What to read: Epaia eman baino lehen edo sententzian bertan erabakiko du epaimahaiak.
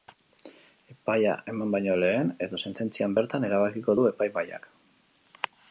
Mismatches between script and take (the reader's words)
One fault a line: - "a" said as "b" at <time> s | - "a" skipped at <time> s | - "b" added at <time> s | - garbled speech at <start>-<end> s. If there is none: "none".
none